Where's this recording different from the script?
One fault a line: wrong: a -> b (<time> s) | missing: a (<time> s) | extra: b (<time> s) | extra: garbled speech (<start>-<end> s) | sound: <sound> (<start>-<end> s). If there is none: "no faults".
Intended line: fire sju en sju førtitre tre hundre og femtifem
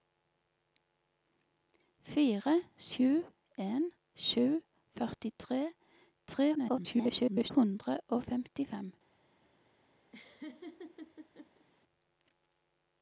extra: garbled speech (6.5-7.5 s)
sound: laugh (10.1-11.7 s)